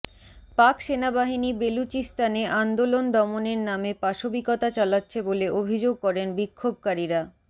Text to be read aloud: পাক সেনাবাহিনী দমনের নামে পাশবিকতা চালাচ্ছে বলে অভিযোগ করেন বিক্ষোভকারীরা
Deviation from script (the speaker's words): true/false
true